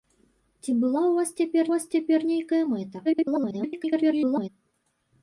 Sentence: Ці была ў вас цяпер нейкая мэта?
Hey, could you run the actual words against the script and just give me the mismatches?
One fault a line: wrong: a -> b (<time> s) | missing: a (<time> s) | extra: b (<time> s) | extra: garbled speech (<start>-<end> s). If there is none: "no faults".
extra: вас цяпер (1.7 s)
extra: garbled speech (3.0-4.5 s)